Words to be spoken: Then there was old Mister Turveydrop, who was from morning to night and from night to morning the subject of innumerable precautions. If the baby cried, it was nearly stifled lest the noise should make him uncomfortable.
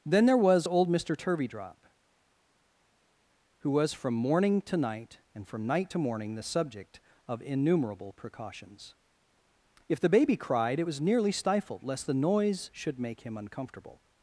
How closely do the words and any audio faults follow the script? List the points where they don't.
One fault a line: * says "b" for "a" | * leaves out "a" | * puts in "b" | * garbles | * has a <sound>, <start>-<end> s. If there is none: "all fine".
all fine